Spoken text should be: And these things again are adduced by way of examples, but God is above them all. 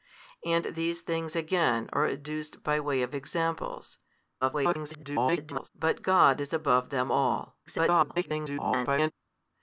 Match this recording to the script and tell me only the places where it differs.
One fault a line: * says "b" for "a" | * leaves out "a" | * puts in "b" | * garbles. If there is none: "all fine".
* garbles
* garbles